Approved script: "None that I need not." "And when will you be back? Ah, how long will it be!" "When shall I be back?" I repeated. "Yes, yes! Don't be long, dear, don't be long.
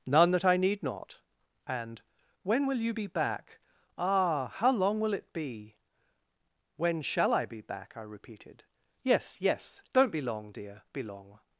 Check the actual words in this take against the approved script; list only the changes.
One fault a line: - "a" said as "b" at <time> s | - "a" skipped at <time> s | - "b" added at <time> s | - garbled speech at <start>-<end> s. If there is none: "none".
- "don't" skipped at 10.8 s